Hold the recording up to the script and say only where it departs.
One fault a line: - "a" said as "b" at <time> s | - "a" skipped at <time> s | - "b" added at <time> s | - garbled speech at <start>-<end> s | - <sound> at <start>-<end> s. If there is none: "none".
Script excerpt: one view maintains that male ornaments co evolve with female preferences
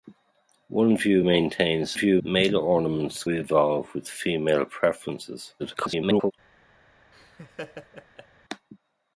- "that" said as "view" at 1.9 s
- "co" skipped at 3.2 s
- garbled speech at 5.6-6.3 s
- laugh at 7.1-8.3 s